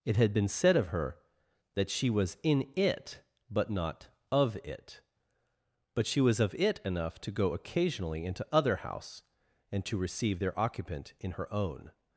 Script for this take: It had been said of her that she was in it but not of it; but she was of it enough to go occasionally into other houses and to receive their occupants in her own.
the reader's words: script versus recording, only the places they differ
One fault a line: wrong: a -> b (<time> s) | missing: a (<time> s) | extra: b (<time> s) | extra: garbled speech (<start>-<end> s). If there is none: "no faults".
wrong: houses -> house (8.8 s)
wrong: occupants -> occupant (10.6 s)